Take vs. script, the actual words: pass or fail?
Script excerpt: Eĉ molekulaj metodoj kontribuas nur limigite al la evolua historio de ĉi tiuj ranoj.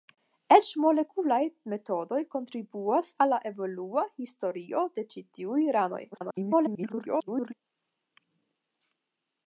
fail